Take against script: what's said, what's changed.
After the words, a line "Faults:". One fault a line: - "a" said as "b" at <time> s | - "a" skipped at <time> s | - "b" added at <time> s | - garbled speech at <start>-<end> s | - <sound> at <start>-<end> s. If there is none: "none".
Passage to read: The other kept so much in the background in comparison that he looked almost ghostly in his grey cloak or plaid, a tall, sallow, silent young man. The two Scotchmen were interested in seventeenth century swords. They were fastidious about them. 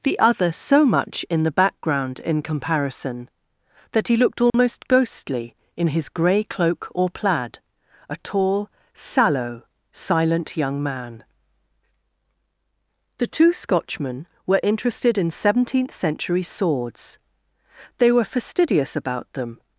The other so much in the background in comparison that he looked almost ghostly in his grey cloak or plaid, a tall, sallow, silent young man. The two Scotchmen were interested in seventeenth century swords. They were fastidious about them.
Faults:
- "kept" skipped at 0.5 s
- dropout at 4.5-4.5 s